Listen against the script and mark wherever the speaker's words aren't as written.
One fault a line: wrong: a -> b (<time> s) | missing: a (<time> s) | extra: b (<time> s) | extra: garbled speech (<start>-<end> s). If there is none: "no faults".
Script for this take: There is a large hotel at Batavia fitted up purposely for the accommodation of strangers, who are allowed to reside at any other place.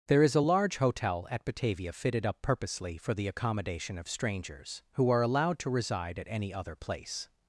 no faults